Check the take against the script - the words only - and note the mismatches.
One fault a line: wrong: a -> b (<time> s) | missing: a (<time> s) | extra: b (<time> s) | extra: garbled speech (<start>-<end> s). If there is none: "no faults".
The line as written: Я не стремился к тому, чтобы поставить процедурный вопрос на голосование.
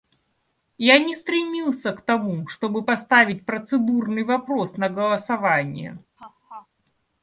no faults